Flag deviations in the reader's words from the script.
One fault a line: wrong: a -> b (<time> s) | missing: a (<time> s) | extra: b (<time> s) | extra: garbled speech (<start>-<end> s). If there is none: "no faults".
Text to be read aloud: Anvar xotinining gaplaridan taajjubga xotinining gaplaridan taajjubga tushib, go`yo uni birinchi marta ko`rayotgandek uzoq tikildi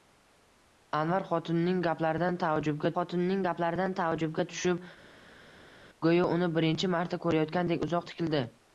no faults